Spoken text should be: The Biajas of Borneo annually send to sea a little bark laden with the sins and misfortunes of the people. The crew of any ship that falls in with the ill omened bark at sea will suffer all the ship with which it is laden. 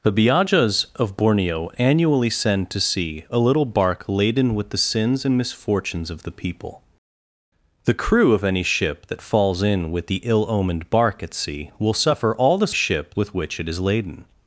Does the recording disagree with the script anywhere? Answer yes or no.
no